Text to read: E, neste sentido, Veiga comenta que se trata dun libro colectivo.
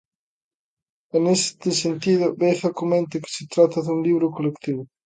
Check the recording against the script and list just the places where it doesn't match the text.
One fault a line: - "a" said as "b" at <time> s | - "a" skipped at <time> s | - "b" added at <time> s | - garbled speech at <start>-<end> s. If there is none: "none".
none